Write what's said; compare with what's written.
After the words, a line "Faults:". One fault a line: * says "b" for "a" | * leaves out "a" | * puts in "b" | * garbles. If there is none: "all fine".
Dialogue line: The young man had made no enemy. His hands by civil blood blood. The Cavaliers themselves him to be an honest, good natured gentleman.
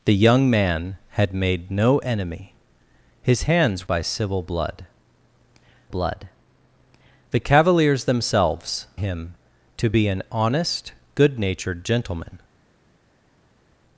The young man had made no enemy. His hands by civil blood blood. The Cavaliers themselves him to be an honest, good natured gentleman.
Faults:
all fine